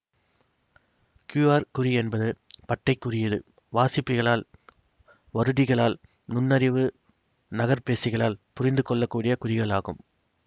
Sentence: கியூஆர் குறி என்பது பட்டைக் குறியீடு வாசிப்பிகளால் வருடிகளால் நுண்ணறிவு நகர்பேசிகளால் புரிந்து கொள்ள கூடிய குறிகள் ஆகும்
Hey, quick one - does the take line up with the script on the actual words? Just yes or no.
yes